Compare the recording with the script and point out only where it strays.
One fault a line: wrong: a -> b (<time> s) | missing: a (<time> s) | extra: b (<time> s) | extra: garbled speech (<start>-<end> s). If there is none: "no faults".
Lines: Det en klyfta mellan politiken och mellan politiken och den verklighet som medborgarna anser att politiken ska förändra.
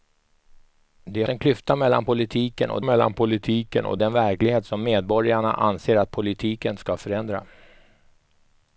no faults